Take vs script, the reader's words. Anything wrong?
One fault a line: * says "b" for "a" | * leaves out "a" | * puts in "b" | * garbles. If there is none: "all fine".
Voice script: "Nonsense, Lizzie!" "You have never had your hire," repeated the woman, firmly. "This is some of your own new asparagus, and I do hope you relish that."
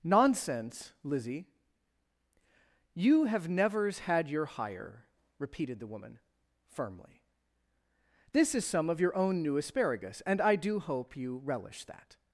* says "nevers" for "never"